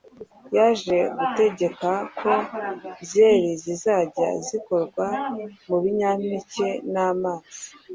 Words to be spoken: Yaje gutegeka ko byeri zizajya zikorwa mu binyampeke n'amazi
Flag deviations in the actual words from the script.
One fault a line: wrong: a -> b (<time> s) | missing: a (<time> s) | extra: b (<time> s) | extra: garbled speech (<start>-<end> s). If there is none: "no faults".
no faults